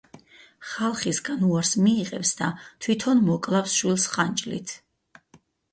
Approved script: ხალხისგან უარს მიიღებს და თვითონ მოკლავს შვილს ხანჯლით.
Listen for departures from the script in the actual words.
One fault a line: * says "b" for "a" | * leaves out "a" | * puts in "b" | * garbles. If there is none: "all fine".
all fine